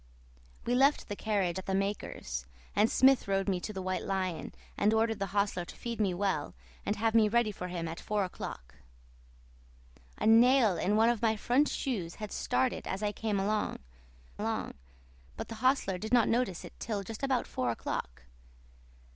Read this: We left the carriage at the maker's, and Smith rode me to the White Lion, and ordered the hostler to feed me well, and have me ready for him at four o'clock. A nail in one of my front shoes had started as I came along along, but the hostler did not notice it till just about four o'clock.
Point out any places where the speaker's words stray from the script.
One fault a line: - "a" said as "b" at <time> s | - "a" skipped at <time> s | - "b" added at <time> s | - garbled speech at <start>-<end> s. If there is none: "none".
none